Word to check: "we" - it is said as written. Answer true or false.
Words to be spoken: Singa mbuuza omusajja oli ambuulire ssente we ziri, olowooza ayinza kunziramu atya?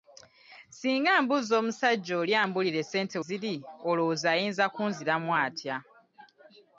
false